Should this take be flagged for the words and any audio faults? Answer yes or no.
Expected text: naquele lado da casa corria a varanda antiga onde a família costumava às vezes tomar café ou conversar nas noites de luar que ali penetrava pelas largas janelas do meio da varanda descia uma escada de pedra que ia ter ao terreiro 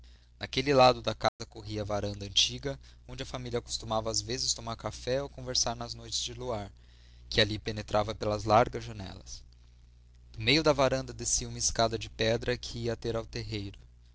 yes